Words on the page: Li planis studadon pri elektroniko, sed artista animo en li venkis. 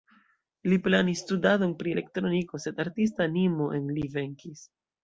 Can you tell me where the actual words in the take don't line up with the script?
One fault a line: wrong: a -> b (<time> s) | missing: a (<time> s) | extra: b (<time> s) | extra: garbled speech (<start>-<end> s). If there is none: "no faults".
no faults